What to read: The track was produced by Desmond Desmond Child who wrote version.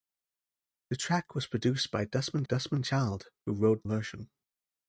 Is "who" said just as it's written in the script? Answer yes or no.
yes